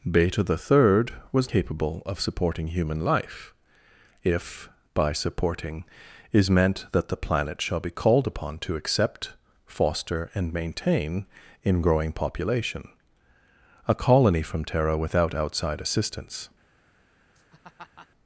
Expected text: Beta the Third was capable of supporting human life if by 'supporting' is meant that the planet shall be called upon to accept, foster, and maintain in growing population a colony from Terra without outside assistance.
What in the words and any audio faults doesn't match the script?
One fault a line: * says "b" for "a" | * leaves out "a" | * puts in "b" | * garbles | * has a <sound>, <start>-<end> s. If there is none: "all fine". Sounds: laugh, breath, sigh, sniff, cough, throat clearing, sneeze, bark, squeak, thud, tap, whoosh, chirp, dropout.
* has a laugh, 17.4-18.1 s